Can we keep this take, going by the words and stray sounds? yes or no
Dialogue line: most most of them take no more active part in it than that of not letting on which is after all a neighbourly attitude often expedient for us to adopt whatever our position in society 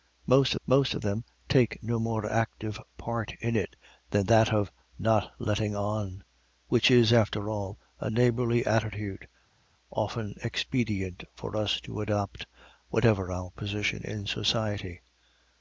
yes